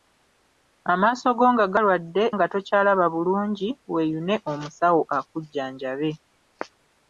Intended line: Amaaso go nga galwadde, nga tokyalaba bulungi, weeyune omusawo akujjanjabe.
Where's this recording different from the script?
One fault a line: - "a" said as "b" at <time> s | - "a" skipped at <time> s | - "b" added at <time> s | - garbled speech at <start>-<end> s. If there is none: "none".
none